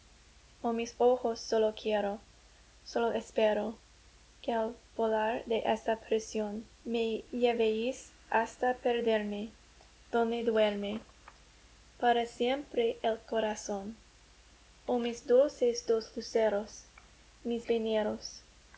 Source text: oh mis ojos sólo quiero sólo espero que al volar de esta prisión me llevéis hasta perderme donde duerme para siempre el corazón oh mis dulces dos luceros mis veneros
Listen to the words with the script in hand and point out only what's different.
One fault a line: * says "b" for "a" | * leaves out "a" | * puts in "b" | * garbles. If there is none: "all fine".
all fine